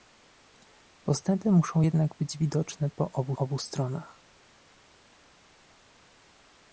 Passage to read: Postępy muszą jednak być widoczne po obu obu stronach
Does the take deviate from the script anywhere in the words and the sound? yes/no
no